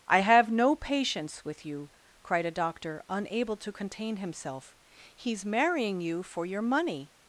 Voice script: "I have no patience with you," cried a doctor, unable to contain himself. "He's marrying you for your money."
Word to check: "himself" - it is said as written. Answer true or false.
true